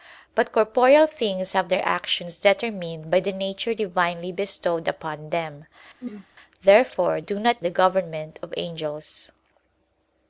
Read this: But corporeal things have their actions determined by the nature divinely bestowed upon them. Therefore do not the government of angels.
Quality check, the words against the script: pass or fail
pass